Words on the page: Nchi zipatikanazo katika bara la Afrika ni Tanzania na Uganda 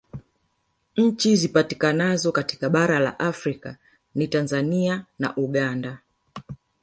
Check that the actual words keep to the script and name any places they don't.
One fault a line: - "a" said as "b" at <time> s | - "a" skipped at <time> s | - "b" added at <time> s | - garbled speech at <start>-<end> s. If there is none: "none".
none